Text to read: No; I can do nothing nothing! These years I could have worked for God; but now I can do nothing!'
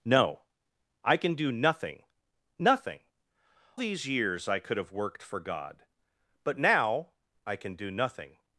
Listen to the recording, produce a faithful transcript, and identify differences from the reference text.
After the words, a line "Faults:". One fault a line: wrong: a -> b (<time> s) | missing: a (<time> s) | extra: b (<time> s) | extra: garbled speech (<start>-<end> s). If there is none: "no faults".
No; I can do nothing nothing! These years I could have worked for God; but now I can do nothing!'
Faults:
no faults